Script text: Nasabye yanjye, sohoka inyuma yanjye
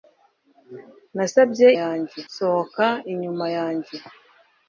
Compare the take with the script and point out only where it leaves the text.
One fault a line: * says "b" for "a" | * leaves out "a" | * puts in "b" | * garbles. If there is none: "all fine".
all fine